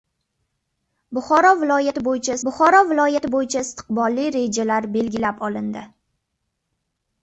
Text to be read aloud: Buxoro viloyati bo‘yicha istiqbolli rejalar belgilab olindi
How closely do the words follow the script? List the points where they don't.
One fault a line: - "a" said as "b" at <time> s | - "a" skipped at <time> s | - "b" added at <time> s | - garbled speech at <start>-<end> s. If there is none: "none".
- "buxoro viloyati bo‘yicha" added at 2.5 s